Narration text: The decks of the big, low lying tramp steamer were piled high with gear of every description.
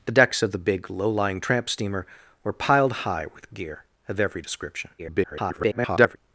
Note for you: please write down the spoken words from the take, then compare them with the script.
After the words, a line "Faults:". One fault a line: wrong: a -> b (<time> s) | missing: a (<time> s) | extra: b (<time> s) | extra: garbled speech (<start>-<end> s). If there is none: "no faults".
The decks of the big, low lying tramp steamer were piled high with gear of every description. [garbled]
Faults:
extra: garbled speech (5.0-6.2 s)